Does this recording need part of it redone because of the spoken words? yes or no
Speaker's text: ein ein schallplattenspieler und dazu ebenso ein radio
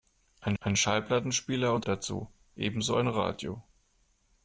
no